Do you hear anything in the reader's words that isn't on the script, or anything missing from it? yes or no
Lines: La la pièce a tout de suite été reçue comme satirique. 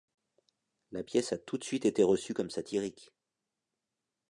yes